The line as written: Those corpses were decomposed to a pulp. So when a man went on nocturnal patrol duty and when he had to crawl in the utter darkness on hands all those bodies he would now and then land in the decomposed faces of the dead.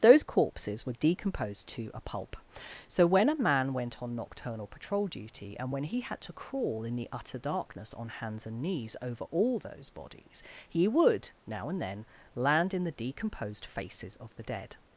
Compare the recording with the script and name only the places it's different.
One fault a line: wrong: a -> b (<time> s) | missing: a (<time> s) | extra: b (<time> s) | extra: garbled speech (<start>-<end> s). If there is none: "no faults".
extra: and knees over (8.5 s)